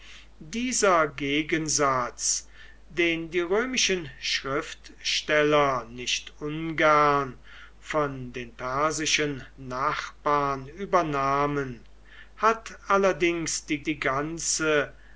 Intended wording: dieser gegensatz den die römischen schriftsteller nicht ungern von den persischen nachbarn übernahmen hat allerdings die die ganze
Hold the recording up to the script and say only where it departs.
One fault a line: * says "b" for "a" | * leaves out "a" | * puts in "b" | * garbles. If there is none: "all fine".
all fine